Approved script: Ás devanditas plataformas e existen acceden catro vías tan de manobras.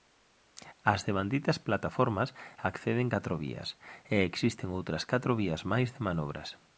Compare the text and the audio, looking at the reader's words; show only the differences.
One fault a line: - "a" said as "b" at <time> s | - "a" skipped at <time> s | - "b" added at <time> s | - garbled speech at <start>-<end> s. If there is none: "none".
- "acceden catro vías" added at 2.7 s
- "acceden" said as "outras" at 4.8 s
- "tan" said as "máis" at 5.7 s